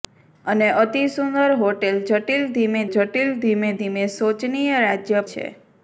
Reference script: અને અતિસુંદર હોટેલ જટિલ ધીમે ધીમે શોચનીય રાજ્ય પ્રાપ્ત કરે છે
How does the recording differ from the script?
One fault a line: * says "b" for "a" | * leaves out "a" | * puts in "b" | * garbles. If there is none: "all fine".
* puts in "જટિલ"
* puts in "ધીમે"
* leaves out "પ્રાપ્ત કરે"